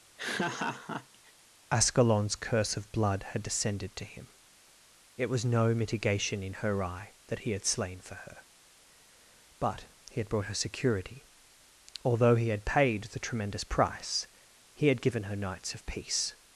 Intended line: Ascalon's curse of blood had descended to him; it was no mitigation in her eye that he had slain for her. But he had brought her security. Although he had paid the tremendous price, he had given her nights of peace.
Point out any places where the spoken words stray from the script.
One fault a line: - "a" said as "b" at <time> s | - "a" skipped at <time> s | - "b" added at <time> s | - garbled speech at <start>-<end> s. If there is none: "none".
none